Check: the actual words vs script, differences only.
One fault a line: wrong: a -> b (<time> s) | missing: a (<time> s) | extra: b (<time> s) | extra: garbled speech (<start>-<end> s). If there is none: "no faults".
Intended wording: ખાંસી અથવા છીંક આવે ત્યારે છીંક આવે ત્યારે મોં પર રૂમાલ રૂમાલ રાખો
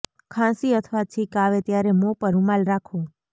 missing: છીંક આવે ત્યારે (1.9 s)
missing: રૂમાલ (2.6 s)